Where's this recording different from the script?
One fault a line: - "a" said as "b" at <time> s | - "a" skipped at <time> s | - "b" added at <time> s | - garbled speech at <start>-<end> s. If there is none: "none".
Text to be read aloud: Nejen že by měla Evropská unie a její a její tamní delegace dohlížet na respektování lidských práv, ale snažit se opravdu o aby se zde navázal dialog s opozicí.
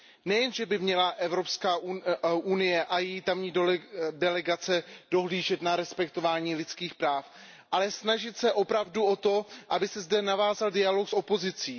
- "a její" skipped at 3.2 s
- "to" added at 9.2 s